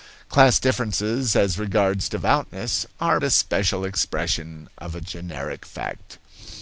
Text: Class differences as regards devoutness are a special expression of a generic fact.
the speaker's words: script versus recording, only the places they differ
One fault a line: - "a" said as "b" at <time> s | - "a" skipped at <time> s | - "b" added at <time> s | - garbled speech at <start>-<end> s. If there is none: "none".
none